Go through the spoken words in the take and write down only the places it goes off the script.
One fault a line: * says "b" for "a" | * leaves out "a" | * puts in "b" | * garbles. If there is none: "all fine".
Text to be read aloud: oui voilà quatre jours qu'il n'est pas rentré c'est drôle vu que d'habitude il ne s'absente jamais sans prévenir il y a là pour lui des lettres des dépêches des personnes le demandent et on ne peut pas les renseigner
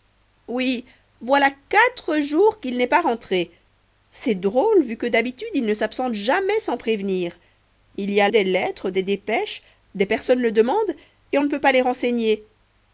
* leaves out "là pour lui"